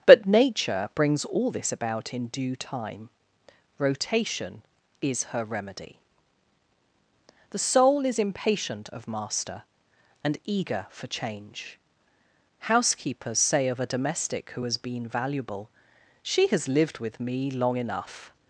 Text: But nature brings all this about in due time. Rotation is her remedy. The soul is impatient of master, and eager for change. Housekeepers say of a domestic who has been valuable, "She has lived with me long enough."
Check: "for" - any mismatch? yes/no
no